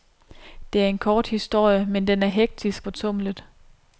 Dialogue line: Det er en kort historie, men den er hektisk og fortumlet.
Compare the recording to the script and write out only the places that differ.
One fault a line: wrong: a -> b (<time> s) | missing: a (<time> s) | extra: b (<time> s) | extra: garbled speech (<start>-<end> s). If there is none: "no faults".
missing: og (2.9 s)